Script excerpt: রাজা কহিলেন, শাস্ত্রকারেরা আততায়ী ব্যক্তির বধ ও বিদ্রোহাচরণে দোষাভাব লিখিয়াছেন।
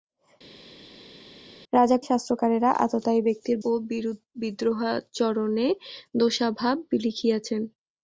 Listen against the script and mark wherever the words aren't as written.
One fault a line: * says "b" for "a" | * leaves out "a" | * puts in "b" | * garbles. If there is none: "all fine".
* leaves out "কহিলেন"
* leaves out "বধ"